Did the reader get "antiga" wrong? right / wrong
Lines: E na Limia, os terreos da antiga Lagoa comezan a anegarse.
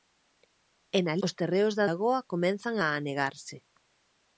wrong